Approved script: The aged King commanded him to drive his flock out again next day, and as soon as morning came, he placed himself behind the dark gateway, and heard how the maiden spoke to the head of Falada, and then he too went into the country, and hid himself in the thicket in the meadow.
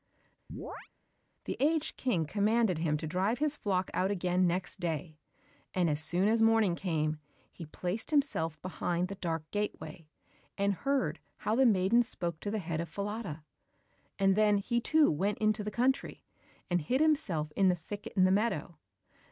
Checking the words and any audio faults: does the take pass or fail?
fail